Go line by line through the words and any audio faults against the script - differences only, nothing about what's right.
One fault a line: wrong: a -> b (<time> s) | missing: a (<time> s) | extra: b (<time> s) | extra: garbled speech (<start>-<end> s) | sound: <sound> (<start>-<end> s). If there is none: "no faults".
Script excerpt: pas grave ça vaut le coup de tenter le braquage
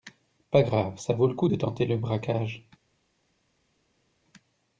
no faults